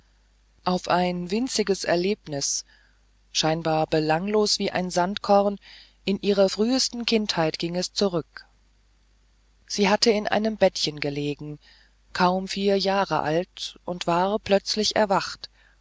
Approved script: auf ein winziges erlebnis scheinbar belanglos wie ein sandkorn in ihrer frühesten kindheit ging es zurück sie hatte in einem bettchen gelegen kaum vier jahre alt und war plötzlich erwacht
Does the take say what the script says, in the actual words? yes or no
yes